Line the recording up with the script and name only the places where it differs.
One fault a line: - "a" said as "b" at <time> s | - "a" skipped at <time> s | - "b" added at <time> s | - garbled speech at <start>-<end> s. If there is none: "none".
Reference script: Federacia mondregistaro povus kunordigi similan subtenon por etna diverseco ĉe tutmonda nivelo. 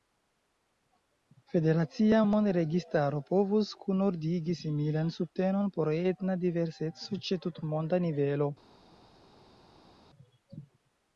none